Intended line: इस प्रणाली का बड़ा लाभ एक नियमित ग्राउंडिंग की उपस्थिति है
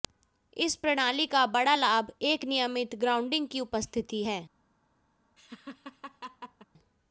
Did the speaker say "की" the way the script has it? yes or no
yes